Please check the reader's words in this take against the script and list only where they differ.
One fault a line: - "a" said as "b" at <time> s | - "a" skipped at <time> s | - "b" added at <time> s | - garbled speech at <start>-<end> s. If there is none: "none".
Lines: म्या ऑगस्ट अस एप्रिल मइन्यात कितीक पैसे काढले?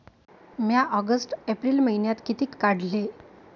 - "अस" skipped at 1.3 s
- "पैसे" skipped at 2.5 s